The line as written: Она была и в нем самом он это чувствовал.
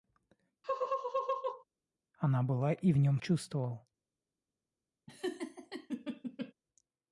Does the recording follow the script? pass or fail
fail